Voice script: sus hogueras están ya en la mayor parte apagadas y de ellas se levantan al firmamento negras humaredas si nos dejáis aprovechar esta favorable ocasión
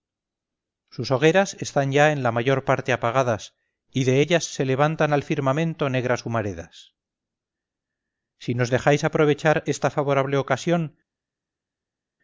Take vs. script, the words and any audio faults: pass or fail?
pass